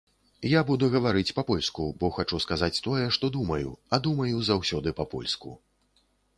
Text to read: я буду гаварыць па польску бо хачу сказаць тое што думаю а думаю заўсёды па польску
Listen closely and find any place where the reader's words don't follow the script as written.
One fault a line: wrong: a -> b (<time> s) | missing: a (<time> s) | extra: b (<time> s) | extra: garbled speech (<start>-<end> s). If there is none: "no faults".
no faults